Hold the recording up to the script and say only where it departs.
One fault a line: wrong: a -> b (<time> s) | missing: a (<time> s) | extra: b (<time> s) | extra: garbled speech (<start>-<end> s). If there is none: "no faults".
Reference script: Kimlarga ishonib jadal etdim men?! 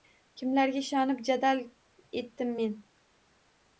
no faults